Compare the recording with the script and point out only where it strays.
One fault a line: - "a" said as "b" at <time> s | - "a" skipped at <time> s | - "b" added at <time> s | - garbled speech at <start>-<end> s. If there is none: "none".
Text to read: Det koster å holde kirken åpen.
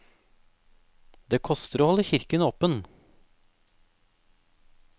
none